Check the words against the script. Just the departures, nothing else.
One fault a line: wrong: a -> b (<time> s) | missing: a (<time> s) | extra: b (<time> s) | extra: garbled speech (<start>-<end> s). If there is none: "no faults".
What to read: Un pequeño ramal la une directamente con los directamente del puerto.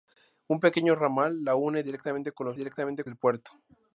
no faults